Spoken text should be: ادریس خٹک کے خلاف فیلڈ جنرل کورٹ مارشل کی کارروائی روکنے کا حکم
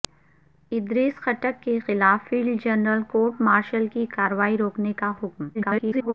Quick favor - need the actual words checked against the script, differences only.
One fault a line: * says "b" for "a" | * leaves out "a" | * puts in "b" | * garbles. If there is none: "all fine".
* garbles